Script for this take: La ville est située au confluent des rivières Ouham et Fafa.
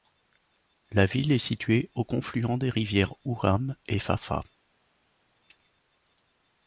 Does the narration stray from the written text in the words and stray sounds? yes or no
no